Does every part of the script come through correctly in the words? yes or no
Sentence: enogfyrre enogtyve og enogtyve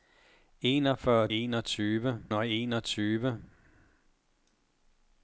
yes